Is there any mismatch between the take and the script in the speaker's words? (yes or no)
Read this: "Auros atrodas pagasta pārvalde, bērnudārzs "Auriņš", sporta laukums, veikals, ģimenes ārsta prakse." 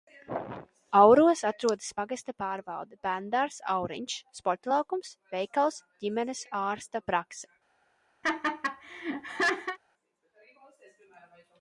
no